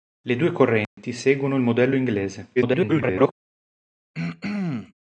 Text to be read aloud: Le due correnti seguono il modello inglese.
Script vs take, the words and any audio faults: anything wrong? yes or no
yes